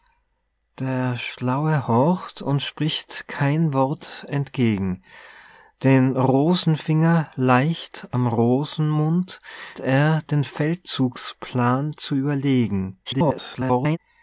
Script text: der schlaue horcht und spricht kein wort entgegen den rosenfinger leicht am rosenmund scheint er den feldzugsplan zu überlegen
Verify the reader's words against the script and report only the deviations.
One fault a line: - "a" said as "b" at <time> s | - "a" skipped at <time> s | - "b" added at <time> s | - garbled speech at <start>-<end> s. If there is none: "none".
- "scheint" skipped at 9.4 s
- garbled speech at 13.0-14.0 s